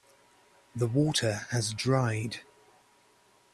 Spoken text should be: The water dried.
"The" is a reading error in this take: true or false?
false